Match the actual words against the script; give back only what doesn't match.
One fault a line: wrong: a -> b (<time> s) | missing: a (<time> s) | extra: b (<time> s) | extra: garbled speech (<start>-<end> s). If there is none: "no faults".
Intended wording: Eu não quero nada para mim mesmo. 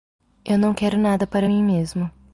no faults